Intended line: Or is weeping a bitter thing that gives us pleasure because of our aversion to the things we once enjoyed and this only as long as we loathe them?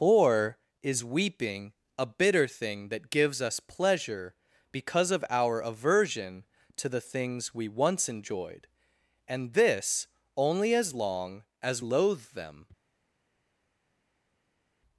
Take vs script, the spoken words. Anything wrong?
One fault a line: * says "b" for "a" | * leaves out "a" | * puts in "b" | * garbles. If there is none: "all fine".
* leaves out "we"